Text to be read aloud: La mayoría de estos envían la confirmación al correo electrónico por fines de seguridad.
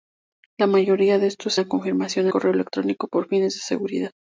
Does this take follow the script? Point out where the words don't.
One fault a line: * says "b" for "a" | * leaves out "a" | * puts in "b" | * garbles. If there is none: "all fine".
* leaves out "envían"
* leaves out "al"